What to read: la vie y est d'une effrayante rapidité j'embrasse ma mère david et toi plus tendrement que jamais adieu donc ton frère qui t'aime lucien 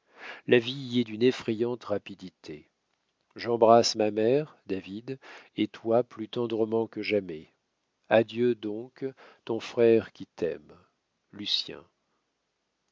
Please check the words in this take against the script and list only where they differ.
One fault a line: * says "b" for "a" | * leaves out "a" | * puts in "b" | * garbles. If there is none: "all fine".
all fine